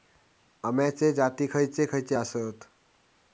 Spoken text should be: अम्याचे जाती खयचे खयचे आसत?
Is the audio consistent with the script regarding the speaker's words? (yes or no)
yes